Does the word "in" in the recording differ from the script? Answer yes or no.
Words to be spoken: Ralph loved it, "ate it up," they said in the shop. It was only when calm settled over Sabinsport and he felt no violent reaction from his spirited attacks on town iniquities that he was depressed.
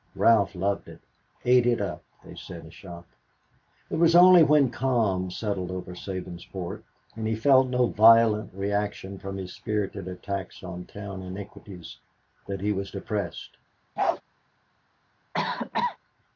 yes